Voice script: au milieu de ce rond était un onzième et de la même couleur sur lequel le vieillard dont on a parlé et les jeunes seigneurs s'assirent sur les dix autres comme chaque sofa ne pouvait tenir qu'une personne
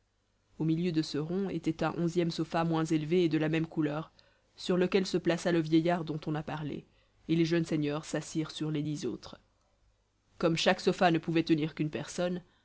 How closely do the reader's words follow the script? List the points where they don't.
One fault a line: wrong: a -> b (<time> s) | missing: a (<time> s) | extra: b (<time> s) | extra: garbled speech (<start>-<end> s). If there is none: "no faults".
extra: sofa moins élevé (2.3 s)
extra: se plaça (5.1 s)